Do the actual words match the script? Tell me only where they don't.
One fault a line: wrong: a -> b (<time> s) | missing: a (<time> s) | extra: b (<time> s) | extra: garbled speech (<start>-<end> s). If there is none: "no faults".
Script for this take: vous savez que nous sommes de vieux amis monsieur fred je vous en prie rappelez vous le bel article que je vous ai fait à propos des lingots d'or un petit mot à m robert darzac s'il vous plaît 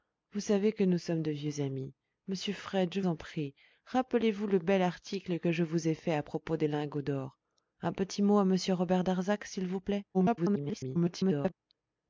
missing: vous (3.0 s)
extra: garbled speech (10.1-11.5 s)